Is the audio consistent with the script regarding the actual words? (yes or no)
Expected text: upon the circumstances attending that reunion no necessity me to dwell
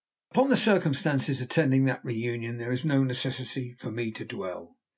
no